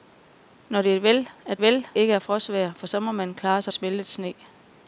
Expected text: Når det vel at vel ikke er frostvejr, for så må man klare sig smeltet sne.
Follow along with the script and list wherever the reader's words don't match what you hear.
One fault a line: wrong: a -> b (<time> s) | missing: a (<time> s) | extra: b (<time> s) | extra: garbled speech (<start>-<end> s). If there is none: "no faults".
no faults